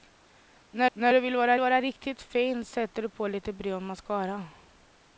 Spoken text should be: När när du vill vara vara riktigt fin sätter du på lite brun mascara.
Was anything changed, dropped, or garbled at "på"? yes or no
no